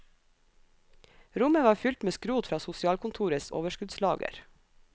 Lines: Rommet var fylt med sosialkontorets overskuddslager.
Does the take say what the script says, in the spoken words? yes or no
no